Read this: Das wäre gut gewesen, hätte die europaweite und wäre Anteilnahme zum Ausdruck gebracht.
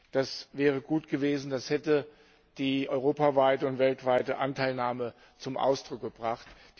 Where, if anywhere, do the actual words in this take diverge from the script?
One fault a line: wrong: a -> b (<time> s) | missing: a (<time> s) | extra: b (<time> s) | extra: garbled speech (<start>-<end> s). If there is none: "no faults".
extra: das (1.5 s)
wrong: wäre -> weltweite (3.8 s)